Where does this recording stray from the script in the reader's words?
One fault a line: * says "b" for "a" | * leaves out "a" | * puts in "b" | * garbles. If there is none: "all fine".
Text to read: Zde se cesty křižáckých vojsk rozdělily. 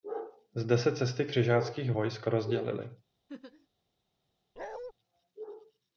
all fine